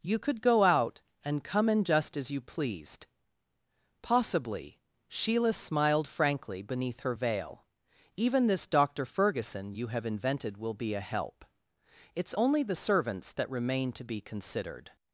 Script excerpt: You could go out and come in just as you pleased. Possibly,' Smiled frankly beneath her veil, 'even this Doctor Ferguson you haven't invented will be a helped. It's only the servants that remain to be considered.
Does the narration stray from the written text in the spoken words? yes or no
yes